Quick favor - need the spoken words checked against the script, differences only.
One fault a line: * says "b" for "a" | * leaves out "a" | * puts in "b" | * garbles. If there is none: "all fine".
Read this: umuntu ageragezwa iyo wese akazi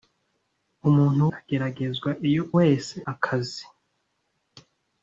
all fine